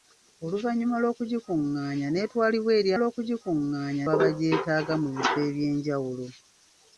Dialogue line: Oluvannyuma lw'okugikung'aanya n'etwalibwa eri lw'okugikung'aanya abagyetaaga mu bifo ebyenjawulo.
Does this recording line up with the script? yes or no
yes